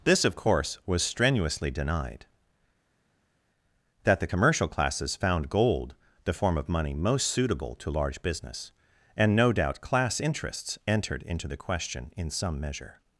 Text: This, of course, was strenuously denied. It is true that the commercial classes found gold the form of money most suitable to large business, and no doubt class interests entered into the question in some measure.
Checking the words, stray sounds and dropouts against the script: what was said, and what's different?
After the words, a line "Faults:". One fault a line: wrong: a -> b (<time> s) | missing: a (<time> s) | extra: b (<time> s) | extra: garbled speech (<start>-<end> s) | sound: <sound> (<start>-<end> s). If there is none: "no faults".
This, of course, was strenuously denied. that the commercial classes found gold the form of money most suitable to large business, and no doubt class interests entered into the question in some measure.
Faults:
missing: It is true (2.2 s)